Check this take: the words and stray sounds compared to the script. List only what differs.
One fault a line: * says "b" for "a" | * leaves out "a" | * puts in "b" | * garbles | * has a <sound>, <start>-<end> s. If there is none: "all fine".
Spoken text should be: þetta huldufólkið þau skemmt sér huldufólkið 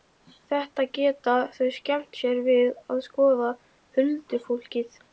* says "geta" for "huldufólkið"
* puts in "við að skoða"